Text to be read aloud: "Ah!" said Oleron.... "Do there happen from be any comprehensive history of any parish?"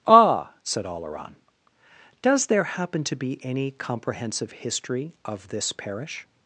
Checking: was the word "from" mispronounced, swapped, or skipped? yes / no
yes